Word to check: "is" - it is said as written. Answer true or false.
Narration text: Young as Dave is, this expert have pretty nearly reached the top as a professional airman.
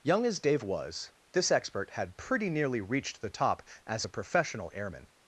false